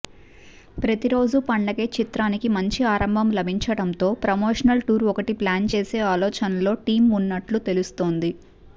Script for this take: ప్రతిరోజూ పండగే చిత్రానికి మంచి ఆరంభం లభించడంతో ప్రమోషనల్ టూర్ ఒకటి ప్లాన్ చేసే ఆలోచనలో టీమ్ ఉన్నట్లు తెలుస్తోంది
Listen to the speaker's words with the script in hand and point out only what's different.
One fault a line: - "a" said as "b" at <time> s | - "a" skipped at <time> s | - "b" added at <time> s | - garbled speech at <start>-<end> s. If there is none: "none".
none